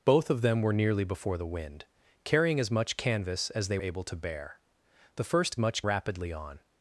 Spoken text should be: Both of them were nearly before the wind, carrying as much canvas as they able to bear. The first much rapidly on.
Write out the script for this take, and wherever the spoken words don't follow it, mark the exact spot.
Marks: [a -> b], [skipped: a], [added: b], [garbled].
Both of them were nearly before the wind, carrying as much canvas as they able to bear. The first much rapidly on.